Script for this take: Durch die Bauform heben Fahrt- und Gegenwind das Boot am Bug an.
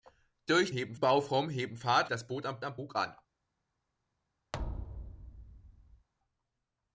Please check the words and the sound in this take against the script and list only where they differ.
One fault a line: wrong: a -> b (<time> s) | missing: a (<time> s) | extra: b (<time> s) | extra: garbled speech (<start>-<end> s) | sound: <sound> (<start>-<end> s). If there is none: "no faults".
wrong: die -> heben (0.7 s)
missing: und Gegenwind (2.1 s)
extra: am (2.6 s)
sound: thud (4.5-6.1 s)